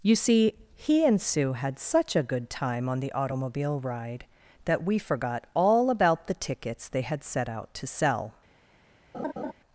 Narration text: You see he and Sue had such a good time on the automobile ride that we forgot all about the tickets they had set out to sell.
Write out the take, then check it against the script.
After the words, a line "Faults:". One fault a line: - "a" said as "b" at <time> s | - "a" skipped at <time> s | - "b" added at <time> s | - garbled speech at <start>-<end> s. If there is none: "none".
You see he and Sue had such a good time on the automobile ride that we forgot all about the tickets they had set out to sell.
Faults:
none